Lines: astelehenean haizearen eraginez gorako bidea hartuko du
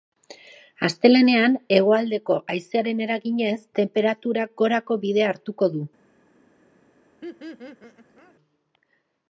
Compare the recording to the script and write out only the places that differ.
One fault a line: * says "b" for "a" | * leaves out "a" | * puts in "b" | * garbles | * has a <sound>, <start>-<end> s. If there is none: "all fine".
* puts in "hegoaldeko"
* puts in "tenperaturak"
* has a laugh, 7.2-8.4 s